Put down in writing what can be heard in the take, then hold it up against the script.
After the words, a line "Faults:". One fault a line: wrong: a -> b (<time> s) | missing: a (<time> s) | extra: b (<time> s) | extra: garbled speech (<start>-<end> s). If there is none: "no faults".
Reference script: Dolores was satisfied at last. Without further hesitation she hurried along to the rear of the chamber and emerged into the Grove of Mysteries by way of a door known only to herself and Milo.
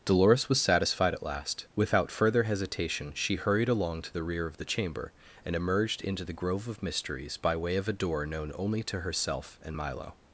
Dolores was satisfied at last. Without further hesitation she hurried along to the rear of the chamber and emerged into the Grove of Mysteries by way of a door known only to herself and Milo.
Faults:
no faults